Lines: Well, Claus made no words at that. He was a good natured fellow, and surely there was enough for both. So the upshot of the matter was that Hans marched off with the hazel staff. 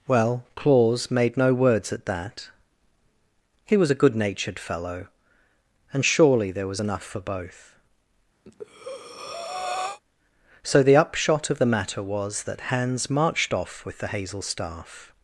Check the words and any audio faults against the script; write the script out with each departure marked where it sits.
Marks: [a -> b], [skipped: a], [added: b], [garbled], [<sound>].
Well, Claus made no words at that. He was a good natured fellow, and surely there was enough for both. [breath] So the upshot of the matter was that Hans marched off with the hazel staff.